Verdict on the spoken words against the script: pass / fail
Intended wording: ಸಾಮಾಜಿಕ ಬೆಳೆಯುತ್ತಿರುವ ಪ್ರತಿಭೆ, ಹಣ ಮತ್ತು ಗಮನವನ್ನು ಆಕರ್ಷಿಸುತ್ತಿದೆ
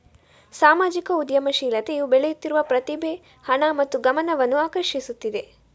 fail